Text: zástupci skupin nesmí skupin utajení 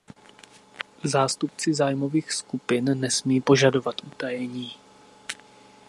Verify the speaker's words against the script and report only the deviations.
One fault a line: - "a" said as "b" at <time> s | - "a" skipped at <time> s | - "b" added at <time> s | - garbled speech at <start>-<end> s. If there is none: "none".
- "zájmových" added at 1.7 s
- "skupin" said as "požadovat" at 3.4 s